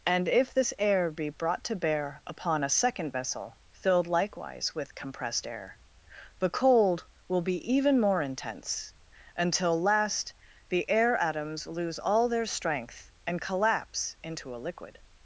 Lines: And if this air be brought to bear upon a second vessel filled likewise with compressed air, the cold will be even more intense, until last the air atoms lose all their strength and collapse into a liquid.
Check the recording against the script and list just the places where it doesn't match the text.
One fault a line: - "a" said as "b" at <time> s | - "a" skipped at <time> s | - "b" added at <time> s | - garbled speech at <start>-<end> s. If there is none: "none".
none